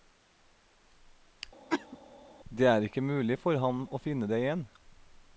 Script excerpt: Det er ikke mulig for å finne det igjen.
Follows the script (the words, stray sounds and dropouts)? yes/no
no